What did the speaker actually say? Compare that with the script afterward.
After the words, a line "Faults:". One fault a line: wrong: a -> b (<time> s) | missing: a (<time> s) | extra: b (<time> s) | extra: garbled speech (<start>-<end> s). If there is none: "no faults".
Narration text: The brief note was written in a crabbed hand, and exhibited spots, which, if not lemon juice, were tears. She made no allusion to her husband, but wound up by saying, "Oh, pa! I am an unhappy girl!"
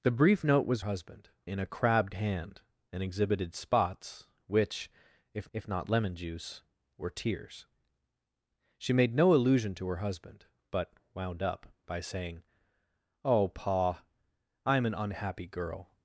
The brief note was husband in a crabbed hand, and exhibited spots, which, if if not lemon juice, were tears. She made no allusion to her husband, but wound up by saying, "Oh, pa! I am an unhappy girl!"
Faults:
wrong: written -> husband (0.8 s)
extra: if (5.5 s)